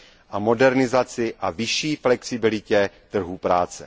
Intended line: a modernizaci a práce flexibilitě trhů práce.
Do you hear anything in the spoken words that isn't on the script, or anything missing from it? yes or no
yes